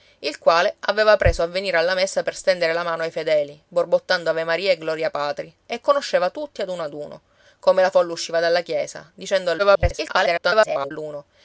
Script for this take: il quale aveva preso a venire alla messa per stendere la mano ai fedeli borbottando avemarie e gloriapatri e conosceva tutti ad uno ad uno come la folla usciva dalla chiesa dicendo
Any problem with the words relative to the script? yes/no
yes